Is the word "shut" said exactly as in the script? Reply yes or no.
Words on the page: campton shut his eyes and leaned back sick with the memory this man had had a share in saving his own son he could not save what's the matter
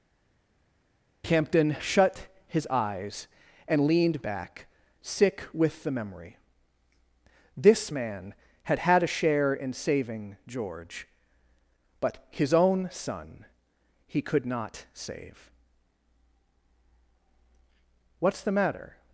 yes